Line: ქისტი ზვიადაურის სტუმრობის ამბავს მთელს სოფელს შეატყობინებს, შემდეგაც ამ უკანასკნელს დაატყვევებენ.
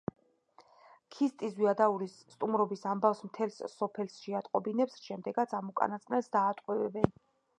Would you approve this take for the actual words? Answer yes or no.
yes